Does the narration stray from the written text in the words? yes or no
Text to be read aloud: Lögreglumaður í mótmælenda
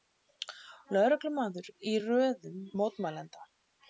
yes